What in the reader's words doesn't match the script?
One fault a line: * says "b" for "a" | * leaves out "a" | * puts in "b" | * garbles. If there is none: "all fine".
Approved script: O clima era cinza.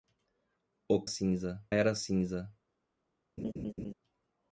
* says "cinza" for "clima"